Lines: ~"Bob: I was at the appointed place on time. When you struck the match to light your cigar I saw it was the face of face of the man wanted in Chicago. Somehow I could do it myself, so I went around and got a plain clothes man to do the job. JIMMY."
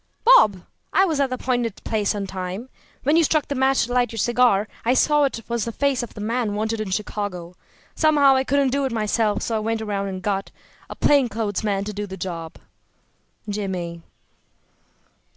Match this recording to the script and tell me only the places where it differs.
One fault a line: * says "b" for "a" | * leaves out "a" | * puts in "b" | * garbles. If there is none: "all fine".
* leaves out "face of"
* says "couldn't" for "could"